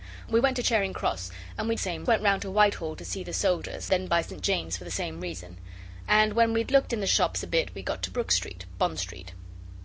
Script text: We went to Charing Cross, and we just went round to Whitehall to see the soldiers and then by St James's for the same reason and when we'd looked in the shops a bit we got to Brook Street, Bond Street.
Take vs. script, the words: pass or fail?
fail